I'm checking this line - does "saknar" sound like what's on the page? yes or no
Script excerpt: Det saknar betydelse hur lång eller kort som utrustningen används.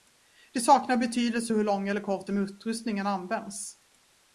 yes